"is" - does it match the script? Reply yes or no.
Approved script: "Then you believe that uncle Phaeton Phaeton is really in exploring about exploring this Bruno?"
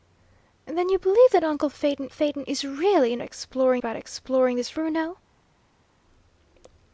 yes